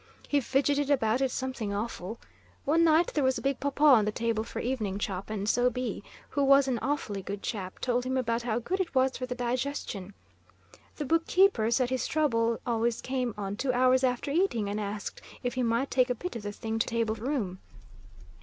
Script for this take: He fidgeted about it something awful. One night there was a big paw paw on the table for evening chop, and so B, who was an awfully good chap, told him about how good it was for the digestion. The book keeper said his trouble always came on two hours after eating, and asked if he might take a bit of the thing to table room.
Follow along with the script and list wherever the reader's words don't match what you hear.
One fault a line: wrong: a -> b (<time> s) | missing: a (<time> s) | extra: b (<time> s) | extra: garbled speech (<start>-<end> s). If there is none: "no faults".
no faults